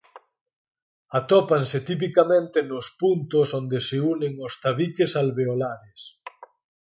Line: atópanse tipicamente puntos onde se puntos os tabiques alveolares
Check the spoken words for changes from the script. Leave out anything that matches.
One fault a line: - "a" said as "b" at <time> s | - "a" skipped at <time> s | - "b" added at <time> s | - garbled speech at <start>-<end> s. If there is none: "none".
- "nos" added at 2.7 s
- "puntos" said as "unen" at 4.1 s